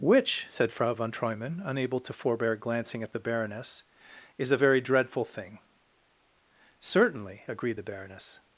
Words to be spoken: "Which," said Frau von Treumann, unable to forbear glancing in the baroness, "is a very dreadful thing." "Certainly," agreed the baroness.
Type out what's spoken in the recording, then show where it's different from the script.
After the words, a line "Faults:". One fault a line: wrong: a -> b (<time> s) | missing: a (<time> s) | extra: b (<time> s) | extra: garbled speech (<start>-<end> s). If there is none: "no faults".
"Which," said Frau von Treumann, unable to forbear glancing at the baroness, "is a very dreadful thing." "Certainly," agreed the baroness.
Faults:
wrong: in -> at (3.0 s)